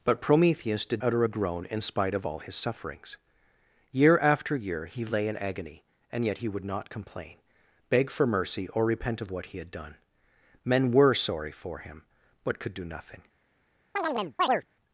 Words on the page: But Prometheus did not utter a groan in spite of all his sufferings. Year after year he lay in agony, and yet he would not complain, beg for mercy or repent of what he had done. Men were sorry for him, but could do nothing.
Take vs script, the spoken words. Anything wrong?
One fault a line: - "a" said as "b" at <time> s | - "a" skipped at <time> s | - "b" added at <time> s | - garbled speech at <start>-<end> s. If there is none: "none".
- "not" skipped at 1.0 s